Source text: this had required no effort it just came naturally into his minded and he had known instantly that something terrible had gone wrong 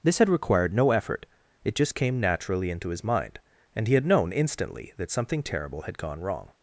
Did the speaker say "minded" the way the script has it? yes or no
no